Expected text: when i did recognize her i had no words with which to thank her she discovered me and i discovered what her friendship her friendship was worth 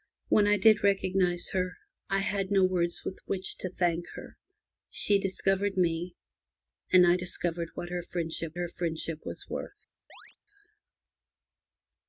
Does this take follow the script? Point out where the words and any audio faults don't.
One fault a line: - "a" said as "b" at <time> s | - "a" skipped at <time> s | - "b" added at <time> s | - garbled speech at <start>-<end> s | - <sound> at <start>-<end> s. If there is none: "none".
- chirp at 10.1-10.4 s